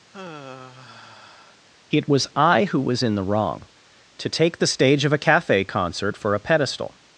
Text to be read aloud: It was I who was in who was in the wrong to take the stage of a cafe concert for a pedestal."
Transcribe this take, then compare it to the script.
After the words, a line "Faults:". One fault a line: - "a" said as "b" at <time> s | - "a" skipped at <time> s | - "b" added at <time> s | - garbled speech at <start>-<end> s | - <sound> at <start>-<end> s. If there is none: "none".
It was I who was in the wrong to take the stage of a cafe concert for a pedestal."
Faults:
- sigh at 0.1-1.6 s
- "who was in" skipped at 3.2 s